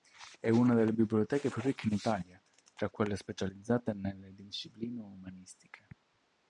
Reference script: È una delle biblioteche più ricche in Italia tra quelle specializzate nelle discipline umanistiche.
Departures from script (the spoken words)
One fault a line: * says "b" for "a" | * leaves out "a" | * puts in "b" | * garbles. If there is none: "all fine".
all fine